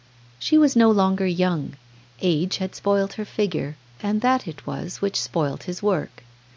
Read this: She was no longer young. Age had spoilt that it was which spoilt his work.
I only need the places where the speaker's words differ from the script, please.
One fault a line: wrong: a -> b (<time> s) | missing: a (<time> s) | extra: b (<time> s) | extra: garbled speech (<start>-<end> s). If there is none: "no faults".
extra: her figure and (3.1 s)